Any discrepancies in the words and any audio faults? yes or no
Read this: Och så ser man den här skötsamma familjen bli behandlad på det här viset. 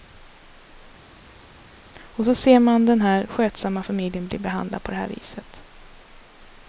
no